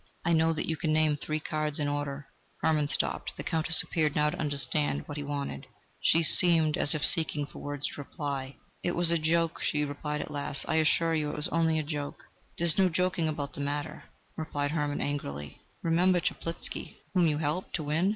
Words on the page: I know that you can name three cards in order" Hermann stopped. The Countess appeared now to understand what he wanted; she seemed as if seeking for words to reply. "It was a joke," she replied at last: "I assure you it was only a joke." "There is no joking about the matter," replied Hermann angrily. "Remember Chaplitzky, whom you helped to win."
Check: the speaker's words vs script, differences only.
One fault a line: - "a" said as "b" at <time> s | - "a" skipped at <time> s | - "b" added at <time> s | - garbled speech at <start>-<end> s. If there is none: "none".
none